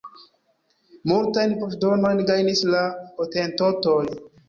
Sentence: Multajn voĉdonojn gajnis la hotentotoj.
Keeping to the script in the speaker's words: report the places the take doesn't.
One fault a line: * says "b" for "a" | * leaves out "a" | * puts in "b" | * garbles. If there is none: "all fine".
all fine